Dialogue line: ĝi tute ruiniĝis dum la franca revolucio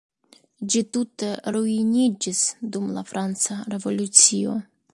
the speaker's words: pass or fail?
pass